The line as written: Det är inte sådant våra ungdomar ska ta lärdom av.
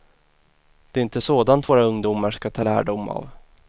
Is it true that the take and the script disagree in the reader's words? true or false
false